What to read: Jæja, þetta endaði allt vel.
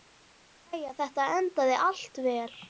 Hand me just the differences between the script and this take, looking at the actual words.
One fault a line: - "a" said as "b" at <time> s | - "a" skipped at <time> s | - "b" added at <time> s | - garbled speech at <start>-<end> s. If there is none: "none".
none